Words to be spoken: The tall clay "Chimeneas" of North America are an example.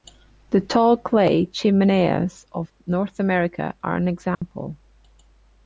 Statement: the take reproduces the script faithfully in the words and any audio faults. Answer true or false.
false